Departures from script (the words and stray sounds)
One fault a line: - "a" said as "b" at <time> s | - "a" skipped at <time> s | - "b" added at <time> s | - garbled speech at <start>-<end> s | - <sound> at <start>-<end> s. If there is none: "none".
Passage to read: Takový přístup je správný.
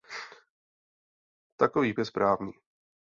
- "přístup" skipped at 1.9 s